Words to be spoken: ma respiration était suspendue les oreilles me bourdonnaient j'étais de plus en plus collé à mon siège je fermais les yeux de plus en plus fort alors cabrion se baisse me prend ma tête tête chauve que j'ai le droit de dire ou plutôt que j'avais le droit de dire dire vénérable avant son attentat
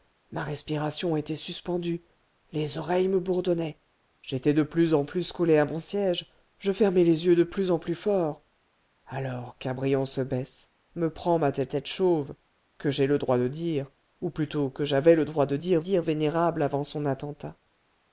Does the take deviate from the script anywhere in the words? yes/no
no